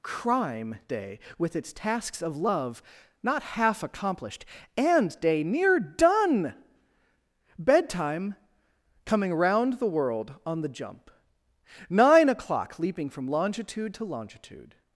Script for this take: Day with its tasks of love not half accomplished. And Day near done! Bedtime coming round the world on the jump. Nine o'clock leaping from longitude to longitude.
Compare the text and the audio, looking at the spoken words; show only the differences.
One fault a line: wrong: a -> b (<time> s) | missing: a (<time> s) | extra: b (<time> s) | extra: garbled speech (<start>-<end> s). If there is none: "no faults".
extra: crime (0.0 s)